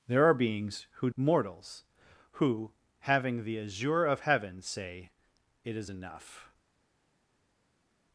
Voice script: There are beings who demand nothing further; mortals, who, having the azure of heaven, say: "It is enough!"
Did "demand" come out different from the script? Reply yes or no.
yes